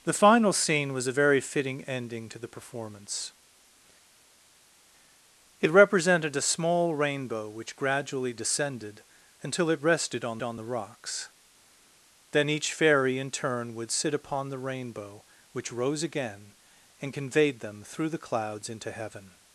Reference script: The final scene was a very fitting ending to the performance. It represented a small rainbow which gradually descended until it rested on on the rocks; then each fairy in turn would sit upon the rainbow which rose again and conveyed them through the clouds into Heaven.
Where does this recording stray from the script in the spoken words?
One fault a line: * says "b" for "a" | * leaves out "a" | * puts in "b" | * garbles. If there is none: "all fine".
all fine